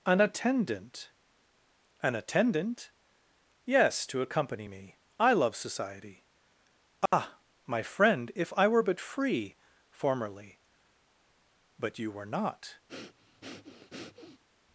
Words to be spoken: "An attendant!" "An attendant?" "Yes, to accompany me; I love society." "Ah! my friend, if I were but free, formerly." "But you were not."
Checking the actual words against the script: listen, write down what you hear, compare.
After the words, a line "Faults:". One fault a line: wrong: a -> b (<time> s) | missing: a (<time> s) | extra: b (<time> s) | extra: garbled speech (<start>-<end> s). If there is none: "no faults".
"An attendant!" "An attendant?" "Yes, to accompany me; I love society." "Ah! my friend, if I were but free, formerly." "But you were not."
Faults:
no faults